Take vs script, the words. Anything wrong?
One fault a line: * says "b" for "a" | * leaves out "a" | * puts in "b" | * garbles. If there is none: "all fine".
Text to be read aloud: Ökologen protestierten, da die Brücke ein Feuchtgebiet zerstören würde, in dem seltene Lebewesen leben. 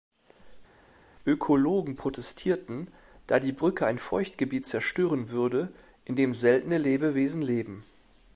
all fine